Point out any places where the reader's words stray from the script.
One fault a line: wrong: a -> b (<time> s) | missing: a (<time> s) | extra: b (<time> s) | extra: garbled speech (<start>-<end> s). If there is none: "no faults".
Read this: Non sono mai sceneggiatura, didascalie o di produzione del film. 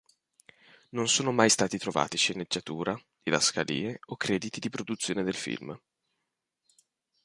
extra: stati trovati (1.5 s)
extra: crediti (4.2 s)